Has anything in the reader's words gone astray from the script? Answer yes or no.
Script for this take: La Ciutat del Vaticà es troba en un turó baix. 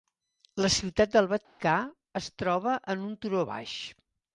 no